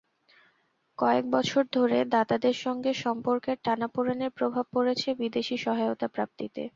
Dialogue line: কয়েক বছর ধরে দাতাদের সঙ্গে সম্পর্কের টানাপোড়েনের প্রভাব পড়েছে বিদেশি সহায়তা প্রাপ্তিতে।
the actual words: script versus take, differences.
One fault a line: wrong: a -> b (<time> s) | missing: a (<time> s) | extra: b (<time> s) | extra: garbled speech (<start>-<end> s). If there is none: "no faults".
no faults